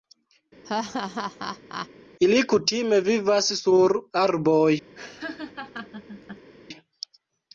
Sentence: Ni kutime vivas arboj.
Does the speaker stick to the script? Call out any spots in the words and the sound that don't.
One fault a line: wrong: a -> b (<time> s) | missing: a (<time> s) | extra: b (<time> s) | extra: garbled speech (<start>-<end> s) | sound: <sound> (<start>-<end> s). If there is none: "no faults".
sound: laugh (0.6-1.9 s)
wrong: Ni -> Ili (2.2 s)
extra: sur (3.6 s)
sound: laugh (4.9-6.5 s)